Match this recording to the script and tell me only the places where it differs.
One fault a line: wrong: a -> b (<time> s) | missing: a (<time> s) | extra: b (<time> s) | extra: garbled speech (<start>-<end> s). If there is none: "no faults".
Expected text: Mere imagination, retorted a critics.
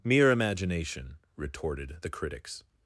wrong: a -> the (2.0 s)